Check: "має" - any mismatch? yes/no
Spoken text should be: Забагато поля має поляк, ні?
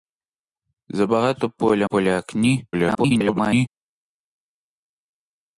yes